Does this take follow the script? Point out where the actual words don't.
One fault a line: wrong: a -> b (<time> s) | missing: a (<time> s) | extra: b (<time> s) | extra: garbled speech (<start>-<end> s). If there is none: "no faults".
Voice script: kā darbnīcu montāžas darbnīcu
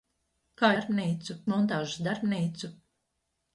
no faults